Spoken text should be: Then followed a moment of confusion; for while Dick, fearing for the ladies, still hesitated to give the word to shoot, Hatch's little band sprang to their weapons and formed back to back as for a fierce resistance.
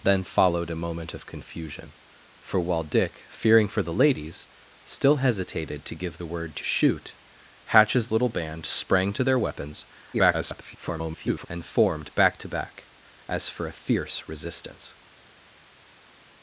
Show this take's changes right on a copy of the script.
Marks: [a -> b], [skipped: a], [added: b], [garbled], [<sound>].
Then followed a moment of confusion; for while Dick, fearing for the ladies, still hesitated to give the word to shoot, Hatch's little band sprang to their weapons [garbled] and formed back to back as for a fierce resistance.